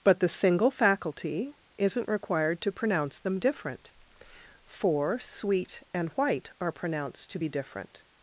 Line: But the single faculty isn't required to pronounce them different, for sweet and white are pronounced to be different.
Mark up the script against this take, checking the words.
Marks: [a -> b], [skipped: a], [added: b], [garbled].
But the single faculty isn't required to pronounce them different, for sweet and white are pronounced to be different.